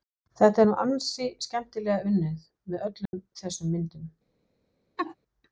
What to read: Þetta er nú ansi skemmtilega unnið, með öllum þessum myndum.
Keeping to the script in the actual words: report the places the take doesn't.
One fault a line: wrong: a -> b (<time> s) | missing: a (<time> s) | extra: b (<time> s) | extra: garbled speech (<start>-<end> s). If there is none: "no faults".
no faults